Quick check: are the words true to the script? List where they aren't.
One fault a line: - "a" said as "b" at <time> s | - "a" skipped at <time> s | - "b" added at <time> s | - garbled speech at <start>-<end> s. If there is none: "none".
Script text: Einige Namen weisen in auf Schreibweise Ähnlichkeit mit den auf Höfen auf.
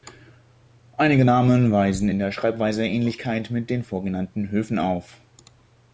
- "auf" said as "der" at 2.2 s
- "auf" said as "vorgenannten" at 3.8 s